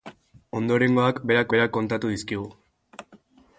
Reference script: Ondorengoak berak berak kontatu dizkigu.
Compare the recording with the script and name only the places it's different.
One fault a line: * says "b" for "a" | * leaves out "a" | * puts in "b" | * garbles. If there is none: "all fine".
all fine